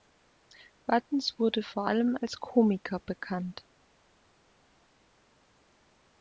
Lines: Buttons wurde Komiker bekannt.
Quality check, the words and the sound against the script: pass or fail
fail